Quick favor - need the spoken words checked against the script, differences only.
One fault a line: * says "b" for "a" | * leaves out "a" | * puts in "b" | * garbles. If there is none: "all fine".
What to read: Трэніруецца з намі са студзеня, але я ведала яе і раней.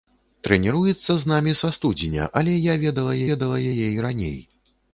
* puts in "ведала"